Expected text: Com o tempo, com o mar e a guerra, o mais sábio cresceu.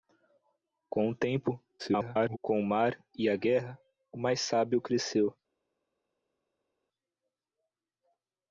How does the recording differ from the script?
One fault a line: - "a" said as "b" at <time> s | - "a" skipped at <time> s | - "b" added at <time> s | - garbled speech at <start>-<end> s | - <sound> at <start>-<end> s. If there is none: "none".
- garbled speech at 1.8-2.4 s